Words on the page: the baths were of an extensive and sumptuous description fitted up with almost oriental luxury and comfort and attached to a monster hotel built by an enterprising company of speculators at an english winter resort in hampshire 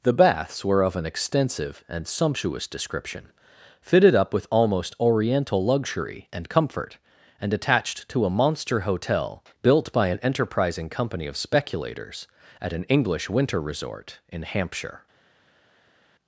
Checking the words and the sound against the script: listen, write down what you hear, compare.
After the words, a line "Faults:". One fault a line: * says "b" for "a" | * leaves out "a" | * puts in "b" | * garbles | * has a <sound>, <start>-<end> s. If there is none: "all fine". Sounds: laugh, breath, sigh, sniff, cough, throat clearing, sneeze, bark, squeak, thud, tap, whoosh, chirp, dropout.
the baths were of an extensive and sumptuous description fitted up with almost oriental luxury and comfort and attached to a monster hotel built by an enterprising company of speculators at an english winter resort in hampshire
Faults:
all fine